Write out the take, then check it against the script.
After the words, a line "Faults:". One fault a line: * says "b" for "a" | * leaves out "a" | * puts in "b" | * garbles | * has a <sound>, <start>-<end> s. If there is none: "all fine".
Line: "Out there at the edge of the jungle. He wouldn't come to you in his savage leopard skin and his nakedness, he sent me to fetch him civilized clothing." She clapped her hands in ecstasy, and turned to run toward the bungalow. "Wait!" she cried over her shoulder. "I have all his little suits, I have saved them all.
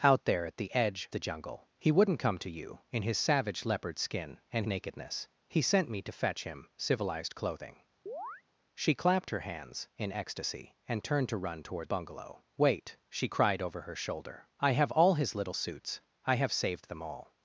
"Out there at the edge the jungle. He wouldn't come to you in his savage leopard skin and nakedness, he sent me to fetch him civilized clothing." She clapped her hands in ecstasy, and turned to run toward bungalow. "Wait!" she cried over her shoulder. "I have all his little suits, I have saved them all.
Faults:
* leaves out "of"
* leaves out "his"
* has a chirp, 8.1-8.4 s
* leaves out "the"